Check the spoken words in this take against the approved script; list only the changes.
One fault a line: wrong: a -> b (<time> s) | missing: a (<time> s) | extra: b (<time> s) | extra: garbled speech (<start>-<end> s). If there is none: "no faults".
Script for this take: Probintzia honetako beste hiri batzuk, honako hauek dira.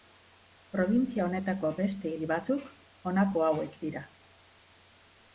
no faults